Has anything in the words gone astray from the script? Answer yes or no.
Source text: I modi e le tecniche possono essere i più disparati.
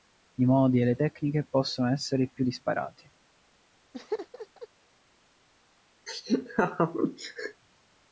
no